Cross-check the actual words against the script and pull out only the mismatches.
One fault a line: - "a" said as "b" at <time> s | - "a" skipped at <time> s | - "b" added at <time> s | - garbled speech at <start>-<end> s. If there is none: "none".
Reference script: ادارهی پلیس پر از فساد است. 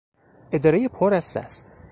- "پلیس" skipped at 0.9 s
- "فساد" skipped at 1.3 s